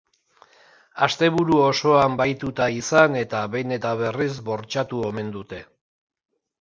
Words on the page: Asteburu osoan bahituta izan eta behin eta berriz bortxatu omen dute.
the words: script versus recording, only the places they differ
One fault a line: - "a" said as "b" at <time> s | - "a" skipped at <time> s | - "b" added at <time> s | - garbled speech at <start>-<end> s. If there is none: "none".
none